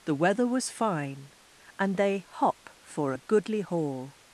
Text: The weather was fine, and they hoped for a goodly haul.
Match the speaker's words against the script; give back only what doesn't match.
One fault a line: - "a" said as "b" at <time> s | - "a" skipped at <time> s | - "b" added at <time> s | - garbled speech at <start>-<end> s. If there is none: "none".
- "hoped" said as "hop" at 2.3 s